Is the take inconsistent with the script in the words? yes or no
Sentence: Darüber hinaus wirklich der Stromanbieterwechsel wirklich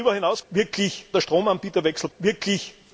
no